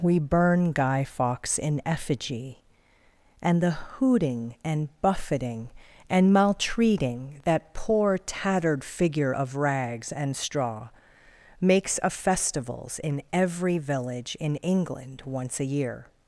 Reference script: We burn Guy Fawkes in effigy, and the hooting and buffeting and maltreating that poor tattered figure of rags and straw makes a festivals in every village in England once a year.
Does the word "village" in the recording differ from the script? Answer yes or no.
no